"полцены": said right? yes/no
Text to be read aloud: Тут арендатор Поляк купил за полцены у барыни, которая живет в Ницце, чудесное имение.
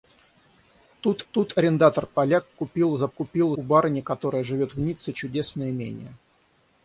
no